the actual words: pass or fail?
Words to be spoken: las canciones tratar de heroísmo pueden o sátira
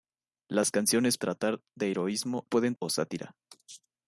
pass